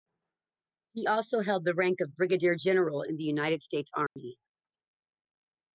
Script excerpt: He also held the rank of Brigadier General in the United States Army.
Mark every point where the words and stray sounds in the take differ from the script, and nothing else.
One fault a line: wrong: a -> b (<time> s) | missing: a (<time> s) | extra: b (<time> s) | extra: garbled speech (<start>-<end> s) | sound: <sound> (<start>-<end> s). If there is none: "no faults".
sound: dropout (4.1-4.2 s)